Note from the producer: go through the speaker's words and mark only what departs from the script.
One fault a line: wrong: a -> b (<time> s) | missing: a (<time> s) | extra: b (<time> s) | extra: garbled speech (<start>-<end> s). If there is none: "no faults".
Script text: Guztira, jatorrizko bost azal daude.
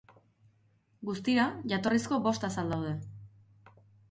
no faults